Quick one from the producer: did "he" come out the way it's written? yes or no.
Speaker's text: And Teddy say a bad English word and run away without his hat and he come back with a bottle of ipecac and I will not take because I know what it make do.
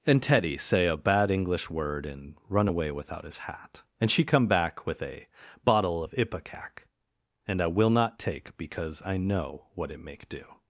no